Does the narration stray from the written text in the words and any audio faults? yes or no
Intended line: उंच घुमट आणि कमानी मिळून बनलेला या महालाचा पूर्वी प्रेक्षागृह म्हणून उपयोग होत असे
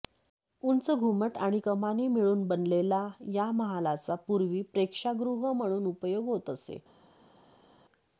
no